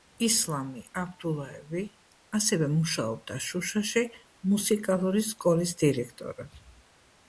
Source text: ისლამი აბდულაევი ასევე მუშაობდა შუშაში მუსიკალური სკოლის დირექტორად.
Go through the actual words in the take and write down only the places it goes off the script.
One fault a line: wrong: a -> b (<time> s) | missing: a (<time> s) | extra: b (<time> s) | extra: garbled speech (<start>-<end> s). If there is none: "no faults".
no faults